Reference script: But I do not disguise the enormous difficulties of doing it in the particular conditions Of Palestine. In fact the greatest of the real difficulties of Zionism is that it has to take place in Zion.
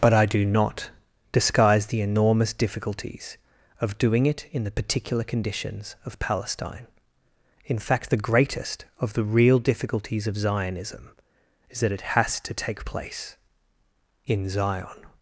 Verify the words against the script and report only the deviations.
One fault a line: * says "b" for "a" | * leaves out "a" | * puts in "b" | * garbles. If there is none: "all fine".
all fine